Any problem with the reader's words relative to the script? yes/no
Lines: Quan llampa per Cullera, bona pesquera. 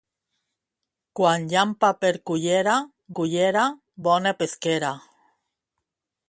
yes